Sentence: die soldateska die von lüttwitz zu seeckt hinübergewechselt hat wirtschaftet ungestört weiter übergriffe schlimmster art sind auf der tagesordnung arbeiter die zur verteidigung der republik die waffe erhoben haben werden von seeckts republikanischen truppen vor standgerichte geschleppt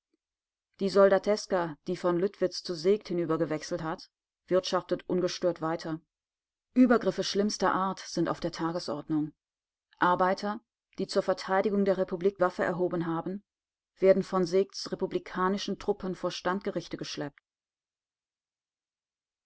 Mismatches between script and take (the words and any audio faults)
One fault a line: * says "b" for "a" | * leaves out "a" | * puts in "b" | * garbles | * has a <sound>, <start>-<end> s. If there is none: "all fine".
* leaves out "die"